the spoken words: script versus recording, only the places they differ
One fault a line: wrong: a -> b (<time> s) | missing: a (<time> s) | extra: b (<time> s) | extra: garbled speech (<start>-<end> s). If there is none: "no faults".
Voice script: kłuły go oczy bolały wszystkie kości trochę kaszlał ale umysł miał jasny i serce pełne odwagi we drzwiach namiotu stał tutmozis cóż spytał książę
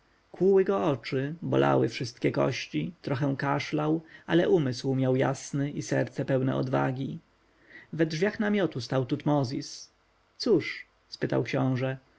no faults